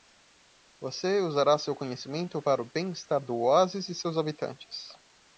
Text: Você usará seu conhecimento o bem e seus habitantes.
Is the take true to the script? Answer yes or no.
no